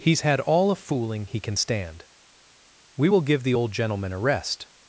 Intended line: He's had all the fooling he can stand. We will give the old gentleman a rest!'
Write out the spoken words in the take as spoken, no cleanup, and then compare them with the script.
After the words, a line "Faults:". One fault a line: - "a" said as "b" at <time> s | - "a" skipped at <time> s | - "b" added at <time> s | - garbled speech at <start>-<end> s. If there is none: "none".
He's had all a fooling he can stand. We will give the old gentleman a rest!'
Faults:
- "the" said as "a" at 0.7 s